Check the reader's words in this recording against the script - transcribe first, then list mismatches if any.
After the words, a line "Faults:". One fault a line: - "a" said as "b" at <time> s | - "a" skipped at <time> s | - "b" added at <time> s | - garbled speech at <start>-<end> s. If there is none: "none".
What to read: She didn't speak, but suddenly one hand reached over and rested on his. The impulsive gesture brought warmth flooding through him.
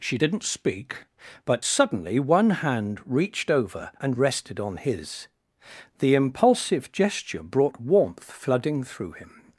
She didn't speak, but suddenly one hand reached over and rested on his. The impulsive gesture brought warmth flooding through him.
Faults:
none